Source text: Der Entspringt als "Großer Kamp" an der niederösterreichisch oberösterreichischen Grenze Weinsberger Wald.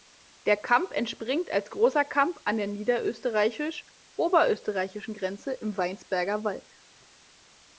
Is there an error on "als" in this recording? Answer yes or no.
no